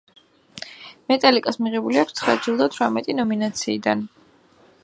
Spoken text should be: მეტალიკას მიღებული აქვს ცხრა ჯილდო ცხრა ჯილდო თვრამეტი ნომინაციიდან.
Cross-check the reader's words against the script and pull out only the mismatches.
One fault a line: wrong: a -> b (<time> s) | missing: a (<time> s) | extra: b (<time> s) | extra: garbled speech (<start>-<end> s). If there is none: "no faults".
missing: ცხრა ჯილდო (2.7 s)